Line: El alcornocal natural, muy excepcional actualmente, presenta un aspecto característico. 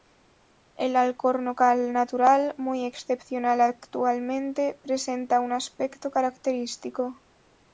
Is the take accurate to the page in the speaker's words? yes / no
yes